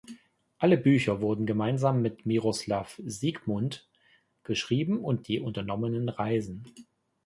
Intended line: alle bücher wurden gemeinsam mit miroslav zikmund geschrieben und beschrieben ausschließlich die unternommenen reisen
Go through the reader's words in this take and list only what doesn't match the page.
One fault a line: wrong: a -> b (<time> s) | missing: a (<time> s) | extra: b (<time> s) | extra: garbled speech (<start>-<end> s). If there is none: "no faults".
missing: beschrieben ausschließlich (5.2 s)